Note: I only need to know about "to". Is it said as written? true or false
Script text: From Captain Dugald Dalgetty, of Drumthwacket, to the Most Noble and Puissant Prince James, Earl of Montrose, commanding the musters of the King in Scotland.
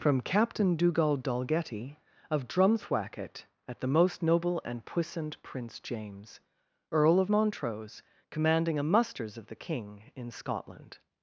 false